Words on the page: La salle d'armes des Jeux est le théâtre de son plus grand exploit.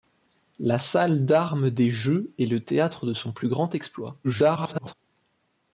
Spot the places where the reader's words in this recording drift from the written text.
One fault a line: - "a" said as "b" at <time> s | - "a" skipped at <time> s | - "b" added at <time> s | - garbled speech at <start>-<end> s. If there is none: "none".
- garbled speech at 4.2-4.9 s